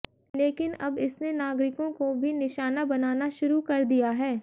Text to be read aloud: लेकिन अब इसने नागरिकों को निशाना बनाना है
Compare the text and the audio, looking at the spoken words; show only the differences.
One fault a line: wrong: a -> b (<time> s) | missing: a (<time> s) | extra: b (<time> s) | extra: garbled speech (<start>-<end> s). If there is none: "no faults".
extra: भी (2.1 s)
extra: शुरू कर दिया (3.4 s)